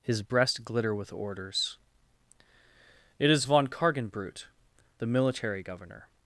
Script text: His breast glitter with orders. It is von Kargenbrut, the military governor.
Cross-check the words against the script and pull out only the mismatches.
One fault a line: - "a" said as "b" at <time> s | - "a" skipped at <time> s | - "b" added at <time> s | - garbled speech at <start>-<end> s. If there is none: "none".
none